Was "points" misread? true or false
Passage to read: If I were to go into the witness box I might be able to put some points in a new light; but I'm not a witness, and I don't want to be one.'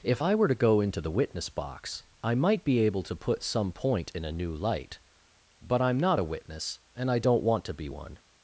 true